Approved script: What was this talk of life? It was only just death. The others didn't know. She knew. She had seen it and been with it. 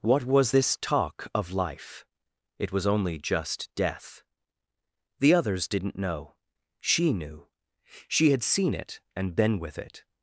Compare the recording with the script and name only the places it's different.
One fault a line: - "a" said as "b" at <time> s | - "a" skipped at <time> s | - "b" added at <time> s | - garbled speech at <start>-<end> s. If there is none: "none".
none